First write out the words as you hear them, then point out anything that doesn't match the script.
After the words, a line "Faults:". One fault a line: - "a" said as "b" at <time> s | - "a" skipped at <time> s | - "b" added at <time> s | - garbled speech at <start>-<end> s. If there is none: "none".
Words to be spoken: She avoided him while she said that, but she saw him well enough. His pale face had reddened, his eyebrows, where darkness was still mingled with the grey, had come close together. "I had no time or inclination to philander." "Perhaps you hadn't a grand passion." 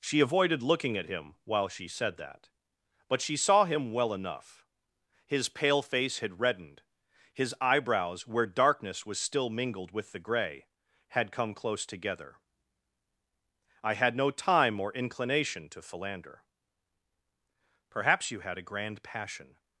She avoided looking at him while she said that, but she saw him well enough. His pale face had reddened, his eyebrows, where darkness was still mingled with the grey, had come close together. "I had no time or inclination to philander." "Perhaps you had a grand passion."
Faults:
- "looking at" added at 0.6 s
- "hadn't" said as "had" at 18.4 s